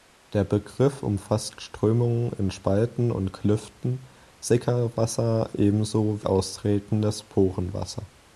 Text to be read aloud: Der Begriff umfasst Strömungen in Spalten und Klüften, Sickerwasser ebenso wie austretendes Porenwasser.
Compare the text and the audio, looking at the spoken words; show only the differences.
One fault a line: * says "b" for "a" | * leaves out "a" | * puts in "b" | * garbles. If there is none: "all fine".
* leaves out "wie"